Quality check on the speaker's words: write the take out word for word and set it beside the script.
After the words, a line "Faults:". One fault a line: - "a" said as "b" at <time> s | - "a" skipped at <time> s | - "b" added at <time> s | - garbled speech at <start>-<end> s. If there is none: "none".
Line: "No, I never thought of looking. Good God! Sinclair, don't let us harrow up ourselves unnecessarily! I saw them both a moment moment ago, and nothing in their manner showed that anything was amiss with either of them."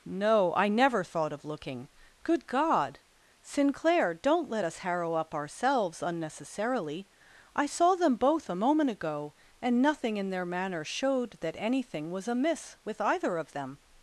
"No, I never thought of looking. Good God! Sinclair, don't let us harrow up ourselves unnecessarily! I saw them both a moment ago, and nothing in their manner showed that anything was amiss with either of them."
Faults:
- "moment" skipped at 8.9 s